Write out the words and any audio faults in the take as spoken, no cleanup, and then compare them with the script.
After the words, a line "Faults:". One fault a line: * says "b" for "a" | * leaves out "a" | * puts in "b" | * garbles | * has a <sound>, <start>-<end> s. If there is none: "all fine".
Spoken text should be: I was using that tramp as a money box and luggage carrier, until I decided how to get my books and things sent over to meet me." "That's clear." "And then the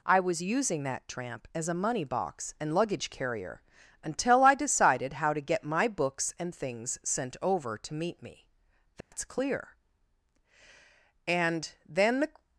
I was using that tramp as a money box and luggage carrier, until I decided how to get my books and things sent over to meet me." "That's clear." "And then the
Faults:
* has a dropout, 9.0-9.1 s